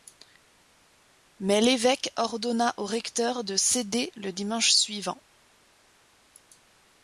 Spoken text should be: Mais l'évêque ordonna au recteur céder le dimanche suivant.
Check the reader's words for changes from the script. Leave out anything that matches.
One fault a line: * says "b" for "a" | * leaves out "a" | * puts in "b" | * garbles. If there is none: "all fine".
* puts in "de"